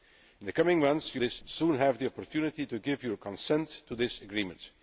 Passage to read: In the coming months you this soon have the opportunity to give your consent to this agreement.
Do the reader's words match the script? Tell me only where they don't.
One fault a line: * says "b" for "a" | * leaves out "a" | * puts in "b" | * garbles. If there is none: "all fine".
all fine